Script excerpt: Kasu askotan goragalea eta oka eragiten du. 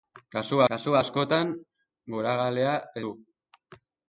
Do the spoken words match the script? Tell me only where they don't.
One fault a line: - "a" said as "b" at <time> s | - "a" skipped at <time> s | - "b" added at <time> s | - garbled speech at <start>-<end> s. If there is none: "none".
- "kasu" added at 0.7 s
- "eta oka eragiten" skipped at 2.7 s